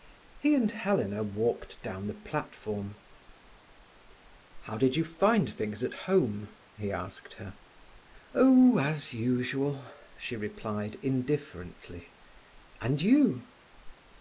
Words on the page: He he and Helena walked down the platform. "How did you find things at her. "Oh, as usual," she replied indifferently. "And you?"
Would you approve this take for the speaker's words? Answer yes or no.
no